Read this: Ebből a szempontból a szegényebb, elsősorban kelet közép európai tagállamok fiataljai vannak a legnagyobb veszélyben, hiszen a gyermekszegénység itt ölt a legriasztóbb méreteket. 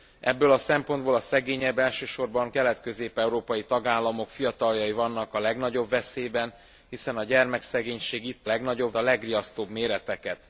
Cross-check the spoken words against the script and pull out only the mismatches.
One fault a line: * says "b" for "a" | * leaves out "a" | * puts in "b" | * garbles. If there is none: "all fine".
* says "legnagyobb" for "ölt"